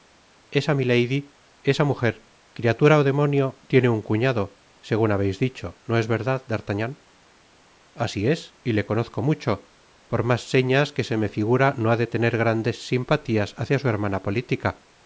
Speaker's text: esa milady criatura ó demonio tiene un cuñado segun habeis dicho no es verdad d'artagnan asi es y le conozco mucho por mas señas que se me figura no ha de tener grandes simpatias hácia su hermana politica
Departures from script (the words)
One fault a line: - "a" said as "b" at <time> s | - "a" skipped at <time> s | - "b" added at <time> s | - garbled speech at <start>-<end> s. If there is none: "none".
- "esa mujer" added at 1.7 s